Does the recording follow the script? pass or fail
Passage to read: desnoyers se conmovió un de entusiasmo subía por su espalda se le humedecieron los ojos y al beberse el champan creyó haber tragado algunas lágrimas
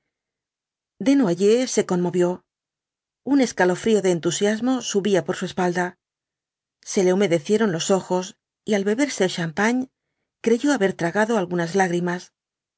fail